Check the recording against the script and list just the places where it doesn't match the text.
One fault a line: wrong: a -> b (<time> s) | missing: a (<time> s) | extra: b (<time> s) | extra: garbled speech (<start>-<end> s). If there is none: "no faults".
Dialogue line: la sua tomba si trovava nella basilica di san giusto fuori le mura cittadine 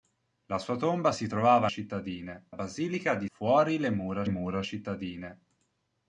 wrong: nella -> cittadine (1.7 s)
missing: san giusto (3.3 s)
extra: mura (4.3 s)